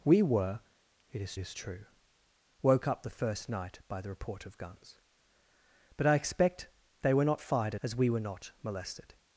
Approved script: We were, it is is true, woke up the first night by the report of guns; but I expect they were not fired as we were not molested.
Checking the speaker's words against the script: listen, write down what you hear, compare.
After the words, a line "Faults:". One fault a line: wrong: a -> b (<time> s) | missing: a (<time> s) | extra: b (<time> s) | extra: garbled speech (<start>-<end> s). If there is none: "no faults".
We were, it is is true, woke up the first night by the report of guns; but I expect they were not fired as we were not molested.
Faults:
no faults